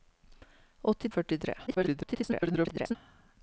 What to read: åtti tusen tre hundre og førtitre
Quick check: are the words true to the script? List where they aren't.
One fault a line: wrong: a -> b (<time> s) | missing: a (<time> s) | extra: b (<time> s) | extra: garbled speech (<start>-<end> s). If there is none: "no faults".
missing: tusen tre hundre (1.1 s)
extra: garbled speech (1.7-3.0 s)